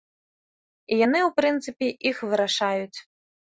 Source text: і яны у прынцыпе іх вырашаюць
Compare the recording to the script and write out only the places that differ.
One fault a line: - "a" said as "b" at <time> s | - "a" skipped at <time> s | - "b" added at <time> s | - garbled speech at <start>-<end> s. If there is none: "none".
none